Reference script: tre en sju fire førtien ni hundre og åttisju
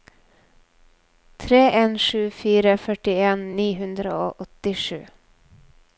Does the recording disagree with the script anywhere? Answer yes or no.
no